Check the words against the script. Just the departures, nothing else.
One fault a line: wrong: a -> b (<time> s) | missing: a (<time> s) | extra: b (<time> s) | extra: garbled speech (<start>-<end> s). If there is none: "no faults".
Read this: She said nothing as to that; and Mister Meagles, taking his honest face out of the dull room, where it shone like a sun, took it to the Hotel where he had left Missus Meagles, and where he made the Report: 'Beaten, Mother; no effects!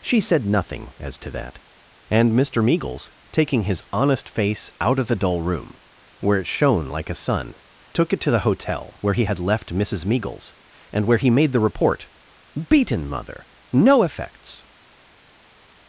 no faults